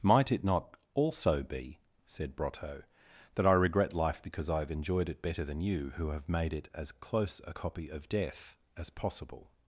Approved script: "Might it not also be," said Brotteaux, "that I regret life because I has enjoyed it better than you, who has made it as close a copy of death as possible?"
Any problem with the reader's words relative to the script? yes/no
yes